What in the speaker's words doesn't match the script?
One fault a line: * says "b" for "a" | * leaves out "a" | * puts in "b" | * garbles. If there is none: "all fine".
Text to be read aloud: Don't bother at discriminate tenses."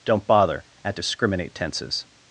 all fine